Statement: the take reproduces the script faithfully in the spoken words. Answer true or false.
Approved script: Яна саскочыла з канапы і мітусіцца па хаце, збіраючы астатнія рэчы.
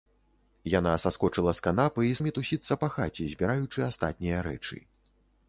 true